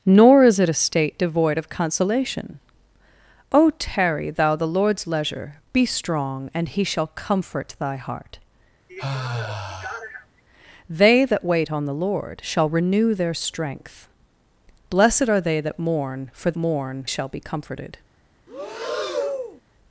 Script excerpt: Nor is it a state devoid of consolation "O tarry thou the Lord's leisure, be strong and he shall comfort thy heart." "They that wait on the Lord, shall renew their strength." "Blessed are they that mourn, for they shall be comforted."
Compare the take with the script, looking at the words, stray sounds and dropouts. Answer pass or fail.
fail